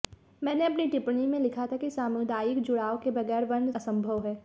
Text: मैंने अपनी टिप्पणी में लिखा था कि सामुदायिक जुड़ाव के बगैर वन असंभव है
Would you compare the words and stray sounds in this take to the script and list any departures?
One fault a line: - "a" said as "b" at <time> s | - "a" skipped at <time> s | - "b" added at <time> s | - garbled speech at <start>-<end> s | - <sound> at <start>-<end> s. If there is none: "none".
none